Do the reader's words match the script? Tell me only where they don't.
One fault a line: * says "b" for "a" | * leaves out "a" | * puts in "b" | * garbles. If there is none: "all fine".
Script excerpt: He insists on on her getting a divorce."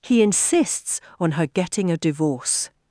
* leaves out "on"